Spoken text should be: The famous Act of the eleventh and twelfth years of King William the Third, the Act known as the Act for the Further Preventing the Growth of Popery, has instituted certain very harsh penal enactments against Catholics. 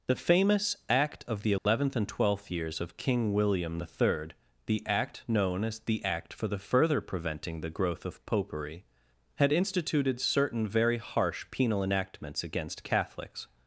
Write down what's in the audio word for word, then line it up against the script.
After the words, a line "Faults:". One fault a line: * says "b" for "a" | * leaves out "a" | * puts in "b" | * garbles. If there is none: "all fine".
The famous Act of the eleventh and twelfth years of King William the Third, the Act known as the Act for the Further Preventing the Growth of Popery, had instituted certain very harsh penal enactments against Catholics.
Faults:
* says "had" for "has"